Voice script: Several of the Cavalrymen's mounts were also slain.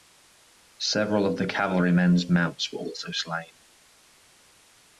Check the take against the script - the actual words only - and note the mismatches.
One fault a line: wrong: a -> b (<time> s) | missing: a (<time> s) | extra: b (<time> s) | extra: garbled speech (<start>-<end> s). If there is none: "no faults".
no faults